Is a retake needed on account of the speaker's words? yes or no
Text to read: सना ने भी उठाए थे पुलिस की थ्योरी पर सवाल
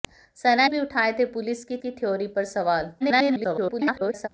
yes